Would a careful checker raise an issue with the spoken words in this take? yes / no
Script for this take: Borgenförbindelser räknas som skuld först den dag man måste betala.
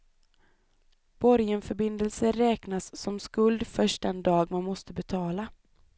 no